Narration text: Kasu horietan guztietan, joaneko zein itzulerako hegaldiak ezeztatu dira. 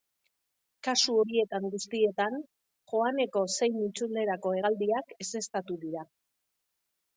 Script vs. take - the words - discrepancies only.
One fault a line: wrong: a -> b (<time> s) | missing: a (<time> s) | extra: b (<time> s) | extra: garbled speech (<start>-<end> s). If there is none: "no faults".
no faults